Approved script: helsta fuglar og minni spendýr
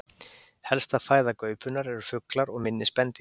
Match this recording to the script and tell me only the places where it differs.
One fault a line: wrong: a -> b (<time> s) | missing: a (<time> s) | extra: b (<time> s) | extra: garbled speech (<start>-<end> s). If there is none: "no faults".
extra: fæða gaupunnar eru (1.1 s)